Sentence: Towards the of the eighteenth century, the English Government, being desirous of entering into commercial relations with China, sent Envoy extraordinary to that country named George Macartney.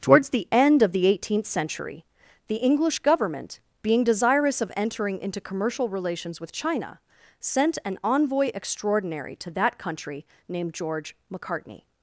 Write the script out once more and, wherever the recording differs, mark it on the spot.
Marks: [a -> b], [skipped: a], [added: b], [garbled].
Towards the [added: end] of the eighteenth century, the English Government, being desirous of entering into commercial relations with China, sent [added: an] Envoy extraordinary to that country named George Macartney.